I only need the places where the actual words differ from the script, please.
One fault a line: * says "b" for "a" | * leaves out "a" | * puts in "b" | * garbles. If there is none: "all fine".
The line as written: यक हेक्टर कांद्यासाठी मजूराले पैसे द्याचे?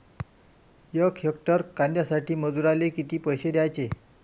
* puts in "किती"